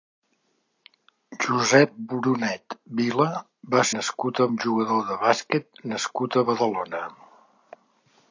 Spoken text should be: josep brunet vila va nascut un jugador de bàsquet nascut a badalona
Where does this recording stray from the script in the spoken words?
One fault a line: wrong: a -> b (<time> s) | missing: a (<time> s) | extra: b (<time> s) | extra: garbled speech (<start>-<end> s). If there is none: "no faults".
no faults